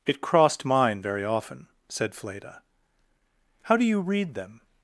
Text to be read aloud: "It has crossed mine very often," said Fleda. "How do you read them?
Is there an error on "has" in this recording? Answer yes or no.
yes